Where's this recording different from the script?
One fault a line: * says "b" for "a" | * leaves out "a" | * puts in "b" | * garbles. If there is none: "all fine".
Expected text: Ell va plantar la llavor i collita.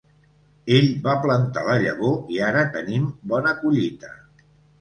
* puts in "ara tenim bona"